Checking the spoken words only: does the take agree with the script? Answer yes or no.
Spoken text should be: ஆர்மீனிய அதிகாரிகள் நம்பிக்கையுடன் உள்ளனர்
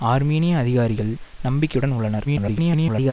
no